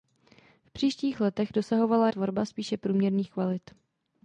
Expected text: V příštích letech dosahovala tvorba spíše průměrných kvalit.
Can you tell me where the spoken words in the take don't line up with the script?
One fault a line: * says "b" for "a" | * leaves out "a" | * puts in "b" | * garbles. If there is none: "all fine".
all fine